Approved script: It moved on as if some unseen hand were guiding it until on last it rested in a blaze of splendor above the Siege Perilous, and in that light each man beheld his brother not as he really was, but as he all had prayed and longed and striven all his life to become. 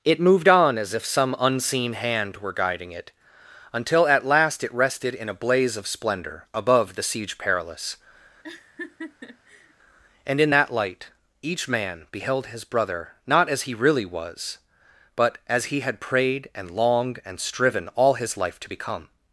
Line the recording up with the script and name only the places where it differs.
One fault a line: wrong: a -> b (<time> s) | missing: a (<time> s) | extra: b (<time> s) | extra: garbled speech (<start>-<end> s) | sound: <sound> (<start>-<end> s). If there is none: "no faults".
wrong: on -> at (4.1 s)
sound: laugh (8.4-9.7 s)
missing: all (15.8 s)